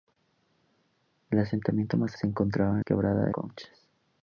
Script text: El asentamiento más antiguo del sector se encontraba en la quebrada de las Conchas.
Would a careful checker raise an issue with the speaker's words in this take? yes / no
yes